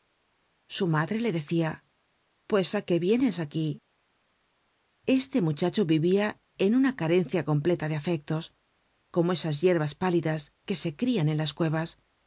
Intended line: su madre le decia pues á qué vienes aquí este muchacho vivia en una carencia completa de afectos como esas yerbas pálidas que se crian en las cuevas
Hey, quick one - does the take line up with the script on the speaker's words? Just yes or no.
yes